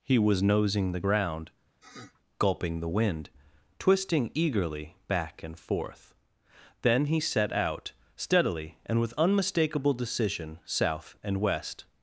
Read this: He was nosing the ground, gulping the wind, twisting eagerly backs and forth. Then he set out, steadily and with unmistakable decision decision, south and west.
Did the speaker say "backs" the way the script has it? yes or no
no